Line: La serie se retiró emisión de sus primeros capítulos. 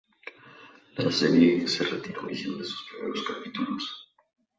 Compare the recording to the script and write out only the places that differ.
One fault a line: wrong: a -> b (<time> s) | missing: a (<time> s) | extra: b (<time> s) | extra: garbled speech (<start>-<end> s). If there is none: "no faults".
no faults